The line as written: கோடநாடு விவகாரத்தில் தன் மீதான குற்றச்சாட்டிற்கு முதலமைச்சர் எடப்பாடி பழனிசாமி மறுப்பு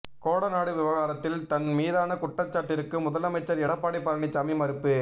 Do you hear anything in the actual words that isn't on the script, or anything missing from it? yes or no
no